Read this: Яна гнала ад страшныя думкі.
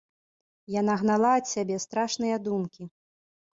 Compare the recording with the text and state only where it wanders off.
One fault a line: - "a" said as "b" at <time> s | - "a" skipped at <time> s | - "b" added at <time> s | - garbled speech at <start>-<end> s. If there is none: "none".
- "сябе" added at 1.5 s